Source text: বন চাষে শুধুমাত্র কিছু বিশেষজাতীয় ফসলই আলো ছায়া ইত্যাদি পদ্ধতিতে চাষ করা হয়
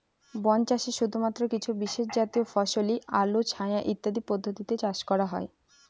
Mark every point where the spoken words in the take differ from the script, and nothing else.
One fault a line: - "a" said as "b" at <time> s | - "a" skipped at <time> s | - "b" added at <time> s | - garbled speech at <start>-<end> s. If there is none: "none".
none